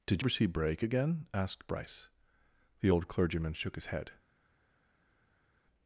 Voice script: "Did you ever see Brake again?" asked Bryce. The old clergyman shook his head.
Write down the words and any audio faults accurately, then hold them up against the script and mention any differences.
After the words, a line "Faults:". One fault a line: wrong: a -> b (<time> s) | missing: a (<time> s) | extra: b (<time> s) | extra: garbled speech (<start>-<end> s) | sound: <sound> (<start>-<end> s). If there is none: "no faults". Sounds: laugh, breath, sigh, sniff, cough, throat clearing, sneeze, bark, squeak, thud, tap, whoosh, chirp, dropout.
"Did ever see Brake again?" asked Bryce. The old clergyman shook his head.
Faults:
missing: you (0.2 s)